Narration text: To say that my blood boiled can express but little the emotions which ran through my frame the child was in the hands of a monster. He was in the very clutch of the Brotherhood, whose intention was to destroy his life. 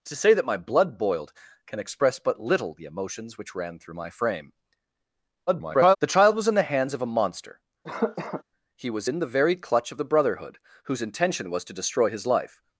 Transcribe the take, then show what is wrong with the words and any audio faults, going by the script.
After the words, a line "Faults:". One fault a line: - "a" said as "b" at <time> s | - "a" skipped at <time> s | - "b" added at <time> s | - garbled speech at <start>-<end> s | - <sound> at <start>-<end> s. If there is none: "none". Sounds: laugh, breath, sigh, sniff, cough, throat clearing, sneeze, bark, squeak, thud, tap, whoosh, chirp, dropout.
To say that my blood boiled can express but little the emotions which ran through my frame [garbled] the child was in the hands of a monster. He was in the very clutch of the Brotherhood, whose intention was to destroy his life.
Faults:
- garbled speech at 5.5-6.0 s
- cough at 7.8-8.4 s